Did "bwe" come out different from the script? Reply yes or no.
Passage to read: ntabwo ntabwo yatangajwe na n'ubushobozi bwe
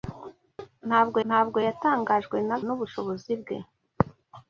no